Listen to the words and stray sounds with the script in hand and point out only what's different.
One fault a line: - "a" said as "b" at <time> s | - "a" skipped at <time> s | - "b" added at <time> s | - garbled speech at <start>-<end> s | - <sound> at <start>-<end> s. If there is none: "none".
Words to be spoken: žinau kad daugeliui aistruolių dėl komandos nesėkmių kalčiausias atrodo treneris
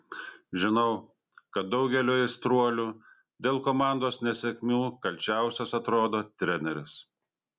none